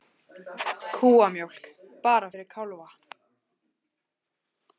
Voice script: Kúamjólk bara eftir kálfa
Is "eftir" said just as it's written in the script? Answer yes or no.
no